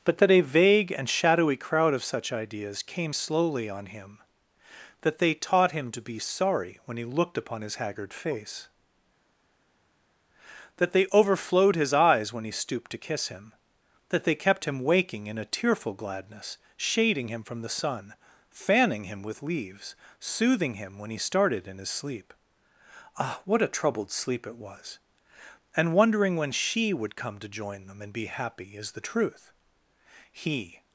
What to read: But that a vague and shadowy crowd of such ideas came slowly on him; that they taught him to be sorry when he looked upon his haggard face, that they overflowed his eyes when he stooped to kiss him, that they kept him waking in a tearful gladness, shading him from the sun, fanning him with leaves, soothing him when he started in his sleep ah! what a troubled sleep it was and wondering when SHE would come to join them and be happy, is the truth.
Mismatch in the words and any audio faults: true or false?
true